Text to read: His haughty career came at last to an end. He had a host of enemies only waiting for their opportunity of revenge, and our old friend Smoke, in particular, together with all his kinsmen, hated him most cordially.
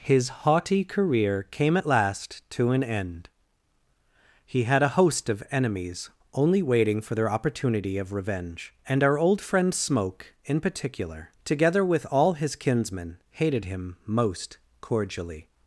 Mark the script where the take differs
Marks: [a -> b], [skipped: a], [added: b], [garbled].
His haughty career came at last to an end. He had a host of enemies only waiting for their opportunity of revenge, and our old friend Smoke, in particular, together with all his kinsmen, hated him most cordially.